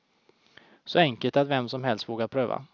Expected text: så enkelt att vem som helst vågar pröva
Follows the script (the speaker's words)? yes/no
yes